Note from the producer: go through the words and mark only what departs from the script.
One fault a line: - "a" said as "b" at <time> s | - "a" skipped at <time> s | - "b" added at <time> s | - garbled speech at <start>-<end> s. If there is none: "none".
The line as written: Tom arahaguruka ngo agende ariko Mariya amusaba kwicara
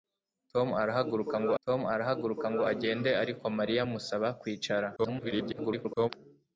- "tom arahaguruka ngo" added at 1.6 s
- garbled speech at 5.0-6.1 s